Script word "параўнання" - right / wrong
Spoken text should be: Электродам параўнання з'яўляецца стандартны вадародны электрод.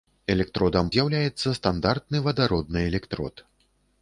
wrong